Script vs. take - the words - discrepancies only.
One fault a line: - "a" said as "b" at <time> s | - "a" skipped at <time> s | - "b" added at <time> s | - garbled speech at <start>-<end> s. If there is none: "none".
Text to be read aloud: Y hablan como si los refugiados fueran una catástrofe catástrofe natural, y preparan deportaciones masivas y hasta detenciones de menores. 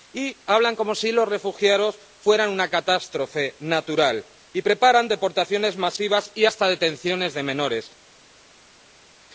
- "catástrofe" skipped at 3.5 s